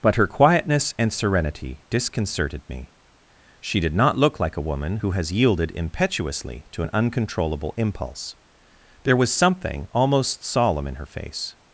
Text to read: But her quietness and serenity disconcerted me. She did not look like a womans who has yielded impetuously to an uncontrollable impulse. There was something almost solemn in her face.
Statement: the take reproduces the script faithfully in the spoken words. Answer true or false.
false